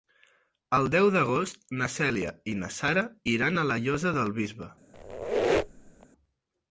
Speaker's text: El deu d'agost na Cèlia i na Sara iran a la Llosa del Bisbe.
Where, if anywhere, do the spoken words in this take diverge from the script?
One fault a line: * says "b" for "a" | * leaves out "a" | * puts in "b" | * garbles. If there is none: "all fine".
all fine